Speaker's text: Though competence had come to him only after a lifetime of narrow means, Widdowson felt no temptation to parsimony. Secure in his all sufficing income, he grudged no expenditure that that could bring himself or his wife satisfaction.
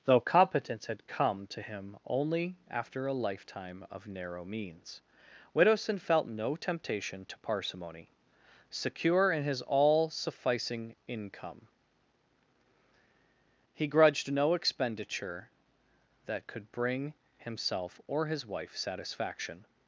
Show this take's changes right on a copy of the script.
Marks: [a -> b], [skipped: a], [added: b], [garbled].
Though competence had come to him only after a lifetime of narrow means, Widdowson felt no temptation to parsimony. Secure in his all sufficing income, he grudged no expenditure that [skipped: that] could bring himself or his wife satisfaction.